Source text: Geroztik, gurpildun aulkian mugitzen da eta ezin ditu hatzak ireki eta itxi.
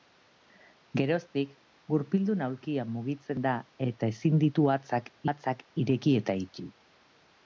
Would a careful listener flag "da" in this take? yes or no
no